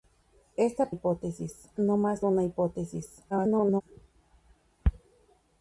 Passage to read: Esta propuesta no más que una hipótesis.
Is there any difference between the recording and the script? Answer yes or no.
yes